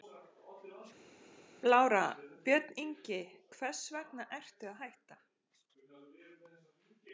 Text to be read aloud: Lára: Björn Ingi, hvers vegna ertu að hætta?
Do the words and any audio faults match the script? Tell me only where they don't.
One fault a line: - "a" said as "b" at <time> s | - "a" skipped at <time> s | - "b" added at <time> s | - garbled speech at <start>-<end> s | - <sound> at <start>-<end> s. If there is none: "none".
none